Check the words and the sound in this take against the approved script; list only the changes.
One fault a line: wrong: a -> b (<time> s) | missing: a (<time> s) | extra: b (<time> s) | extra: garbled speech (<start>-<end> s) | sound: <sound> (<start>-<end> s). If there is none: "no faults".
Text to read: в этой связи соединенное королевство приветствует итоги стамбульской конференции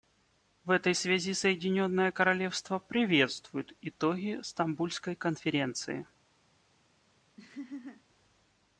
sound: laugh (7.4-8.0 s)